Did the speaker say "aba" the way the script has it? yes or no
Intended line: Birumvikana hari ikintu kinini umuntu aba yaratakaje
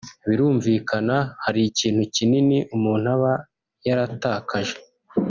yes